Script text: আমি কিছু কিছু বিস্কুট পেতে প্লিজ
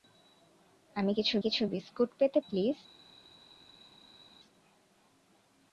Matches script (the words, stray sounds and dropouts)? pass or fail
pass